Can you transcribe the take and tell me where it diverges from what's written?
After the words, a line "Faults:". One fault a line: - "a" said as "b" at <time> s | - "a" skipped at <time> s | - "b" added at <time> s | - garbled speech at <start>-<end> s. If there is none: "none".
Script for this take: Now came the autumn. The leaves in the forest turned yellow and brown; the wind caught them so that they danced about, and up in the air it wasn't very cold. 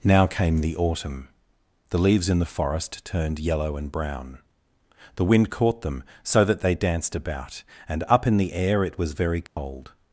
Now came the autumn. The leaves in the forest turned yellow and brown; the wind caught them so that they danced about, and up in the air it was very cold.
Faults:
- "wasn't" said as "was" at 9.0 s